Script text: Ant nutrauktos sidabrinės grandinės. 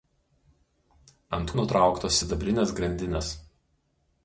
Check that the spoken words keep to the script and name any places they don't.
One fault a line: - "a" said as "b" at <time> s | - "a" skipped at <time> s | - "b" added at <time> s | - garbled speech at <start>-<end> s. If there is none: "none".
none